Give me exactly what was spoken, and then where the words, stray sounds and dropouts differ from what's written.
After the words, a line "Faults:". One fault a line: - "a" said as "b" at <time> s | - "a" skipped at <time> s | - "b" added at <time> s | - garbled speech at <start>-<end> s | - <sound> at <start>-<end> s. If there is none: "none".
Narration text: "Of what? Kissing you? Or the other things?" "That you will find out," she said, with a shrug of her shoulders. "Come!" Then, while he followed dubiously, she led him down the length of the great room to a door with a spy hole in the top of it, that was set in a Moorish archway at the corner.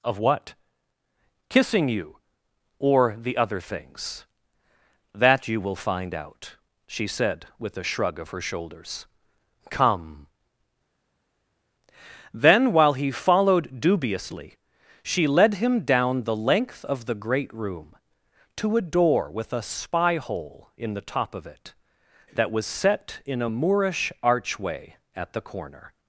"Of what? Kissing you? Or the other things?" "That you will find out," she said, with a shrug of her shoulders. "Come!" Then, while he followed dubiously, she led him down the length of the great room to a door with a spy hole in the top of it, that was set in a Moorish archway at the corner.
Faults:
none